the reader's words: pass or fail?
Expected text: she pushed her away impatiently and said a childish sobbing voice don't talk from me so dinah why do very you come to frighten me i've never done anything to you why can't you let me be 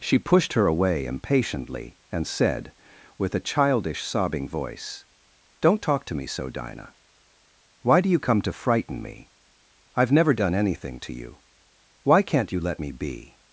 fail